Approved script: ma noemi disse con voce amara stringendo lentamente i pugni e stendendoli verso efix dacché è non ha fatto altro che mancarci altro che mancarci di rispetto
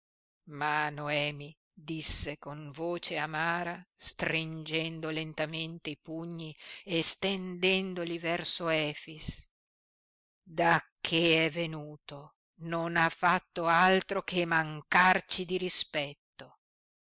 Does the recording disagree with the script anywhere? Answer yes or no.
yes